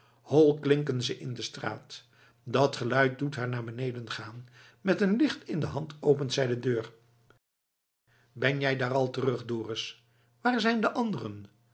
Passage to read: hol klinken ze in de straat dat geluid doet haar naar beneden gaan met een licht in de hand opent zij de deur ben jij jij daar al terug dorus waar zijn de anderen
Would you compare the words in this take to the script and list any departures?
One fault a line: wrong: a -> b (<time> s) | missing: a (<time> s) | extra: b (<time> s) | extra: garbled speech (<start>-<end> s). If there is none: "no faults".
missing: jij (8.8 s)